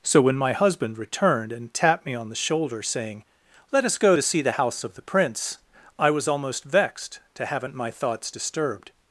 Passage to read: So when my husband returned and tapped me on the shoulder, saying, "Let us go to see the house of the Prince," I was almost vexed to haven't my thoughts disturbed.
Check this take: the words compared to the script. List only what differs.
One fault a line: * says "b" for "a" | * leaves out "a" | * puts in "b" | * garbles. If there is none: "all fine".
all fine